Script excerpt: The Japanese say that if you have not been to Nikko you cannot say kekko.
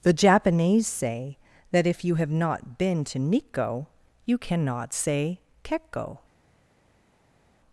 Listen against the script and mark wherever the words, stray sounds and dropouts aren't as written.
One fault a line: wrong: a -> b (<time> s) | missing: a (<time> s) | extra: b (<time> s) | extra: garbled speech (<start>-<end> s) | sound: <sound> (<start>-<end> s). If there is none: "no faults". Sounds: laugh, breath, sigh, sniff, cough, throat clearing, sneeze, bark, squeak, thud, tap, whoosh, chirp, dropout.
no faults